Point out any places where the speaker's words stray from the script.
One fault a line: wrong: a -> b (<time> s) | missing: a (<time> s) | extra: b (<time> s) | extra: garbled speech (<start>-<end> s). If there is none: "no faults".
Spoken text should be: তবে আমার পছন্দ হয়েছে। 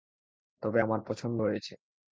no faults